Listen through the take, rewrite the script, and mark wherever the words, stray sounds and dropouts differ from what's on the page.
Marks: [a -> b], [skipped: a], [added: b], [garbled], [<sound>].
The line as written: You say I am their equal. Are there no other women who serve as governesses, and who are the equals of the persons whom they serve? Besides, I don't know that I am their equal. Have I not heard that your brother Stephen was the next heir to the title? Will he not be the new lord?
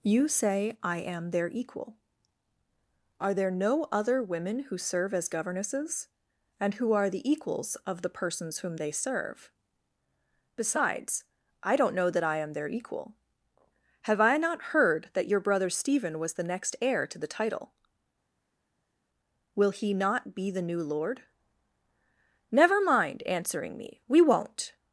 You say I am their equal. Are there no other women who serve as governesses, and who are the equals of the persons whom they serve? Besides, I don't know that I am their equal. Have I not heard that your brother Stephen was the next heir to the title? Will he not be the new lord? [added: Never mind answering me We won't]